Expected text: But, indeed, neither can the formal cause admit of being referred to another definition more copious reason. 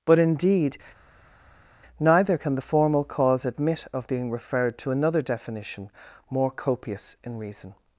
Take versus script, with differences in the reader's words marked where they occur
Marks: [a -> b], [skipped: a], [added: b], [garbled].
But, indeed, neither can the formal cause admit of being referred to another definition more copious [added: in] reason.